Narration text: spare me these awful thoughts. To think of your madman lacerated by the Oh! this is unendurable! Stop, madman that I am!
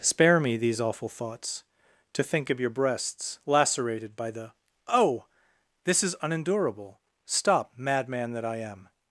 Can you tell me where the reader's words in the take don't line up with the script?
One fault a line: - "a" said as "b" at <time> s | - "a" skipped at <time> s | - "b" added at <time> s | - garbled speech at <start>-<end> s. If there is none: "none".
- "madman" said as "breasts" at 2.7 s